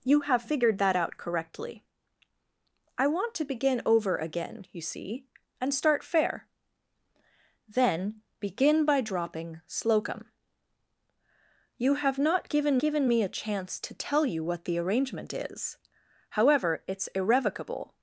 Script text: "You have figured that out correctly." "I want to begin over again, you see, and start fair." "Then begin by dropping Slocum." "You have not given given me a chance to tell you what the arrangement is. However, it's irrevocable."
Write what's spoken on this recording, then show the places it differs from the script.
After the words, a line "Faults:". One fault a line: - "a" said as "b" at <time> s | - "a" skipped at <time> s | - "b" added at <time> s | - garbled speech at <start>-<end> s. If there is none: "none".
"You have figured that out correctly." "I want to begin over again, you see, and start fair." "Then begin by dropping Slocum." "You have not given given me a chance to tell you what the arrangement is. However, it's irrevocable."
Faults:
none